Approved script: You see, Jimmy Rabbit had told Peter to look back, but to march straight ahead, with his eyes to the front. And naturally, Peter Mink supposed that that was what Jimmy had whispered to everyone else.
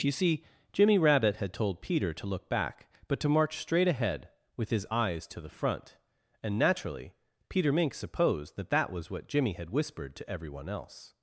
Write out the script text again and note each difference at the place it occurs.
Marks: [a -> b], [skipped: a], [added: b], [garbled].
You see, Jimmy Rabbit had told Peter to look back, but to march straight ahead, with his eyes to the front. And naturally, Peter Mink supposed that that was what Jimmy had whispered to everyone else.